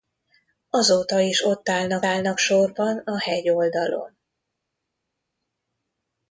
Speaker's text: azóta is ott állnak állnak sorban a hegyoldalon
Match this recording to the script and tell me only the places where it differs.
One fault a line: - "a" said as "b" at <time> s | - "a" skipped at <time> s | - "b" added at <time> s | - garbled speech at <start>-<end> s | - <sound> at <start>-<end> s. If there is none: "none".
none